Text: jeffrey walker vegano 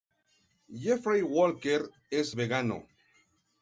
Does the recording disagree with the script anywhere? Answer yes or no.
yes